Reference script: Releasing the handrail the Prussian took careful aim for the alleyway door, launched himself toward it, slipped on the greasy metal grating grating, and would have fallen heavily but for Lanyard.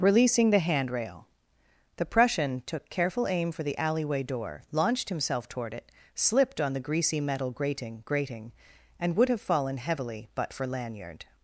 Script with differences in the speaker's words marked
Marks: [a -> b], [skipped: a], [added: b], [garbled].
Releasing the handrail the Prussian took careful aim for the alleyway door, launched himself toward it, slipped on the greasy metal grating grating, and would have fallen heavily but for Lanyard.